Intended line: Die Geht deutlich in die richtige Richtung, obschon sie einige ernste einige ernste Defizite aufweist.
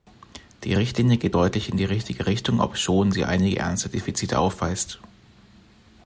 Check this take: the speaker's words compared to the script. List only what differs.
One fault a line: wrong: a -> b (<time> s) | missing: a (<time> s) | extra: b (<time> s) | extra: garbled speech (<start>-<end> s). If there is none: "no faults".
extra: Richtlinie (0.7 s)
missing: einige ernste (3.9 s)